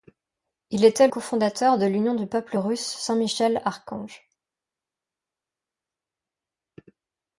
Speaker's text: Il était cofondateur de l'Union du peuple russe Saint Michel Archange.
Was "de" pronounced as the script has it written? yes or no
yes